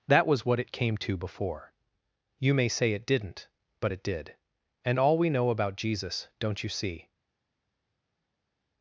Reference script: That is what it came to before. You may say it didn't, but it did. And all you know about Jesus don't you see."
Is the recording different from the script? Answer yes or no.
yes